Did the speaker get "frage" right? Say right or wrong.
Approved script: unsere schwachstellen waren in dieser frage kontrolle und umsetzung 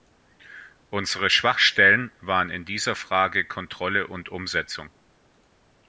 right